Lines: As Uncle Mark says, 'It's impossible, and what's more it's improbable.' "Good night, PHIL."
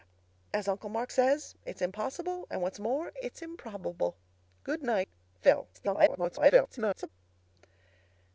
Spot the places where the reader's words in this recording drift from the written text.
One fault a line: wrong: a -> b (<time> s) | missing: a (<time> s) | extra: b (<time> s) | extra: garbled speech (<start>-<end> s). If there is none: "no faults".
extra: garbled speech (5.7-7.1 s)